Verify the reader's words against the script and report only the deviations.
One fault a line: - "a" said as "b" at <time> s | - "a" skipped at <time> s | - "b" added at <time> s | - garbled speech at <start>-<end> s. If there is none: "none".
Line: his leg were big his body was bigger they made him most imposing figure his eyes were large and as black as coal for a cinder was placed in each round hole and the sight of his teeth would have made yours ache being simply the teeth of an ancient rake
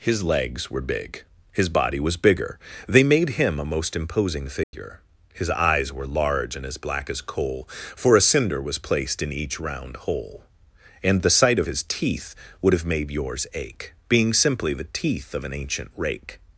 - "leg" said as "legs" at 0.2 s
- "a" added at 3.6 s